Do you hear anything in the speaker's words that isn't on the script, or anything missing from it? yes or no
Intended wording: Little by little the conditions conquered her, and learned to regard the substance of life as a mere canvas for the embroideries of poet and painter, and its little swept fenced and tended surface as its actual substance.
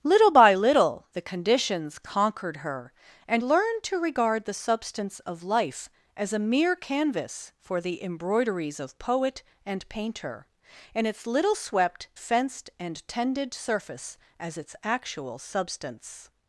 no